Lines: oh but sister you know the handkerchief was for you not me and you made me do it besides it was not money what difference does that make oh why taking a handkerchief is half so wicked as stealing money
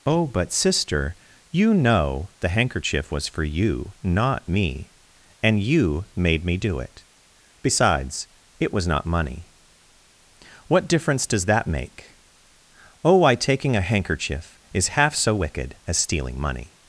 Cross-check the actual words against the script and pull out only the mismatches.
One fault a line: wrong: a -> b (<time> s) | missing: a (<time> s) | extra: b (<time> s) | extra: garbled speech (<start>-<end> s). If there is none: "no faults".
no faults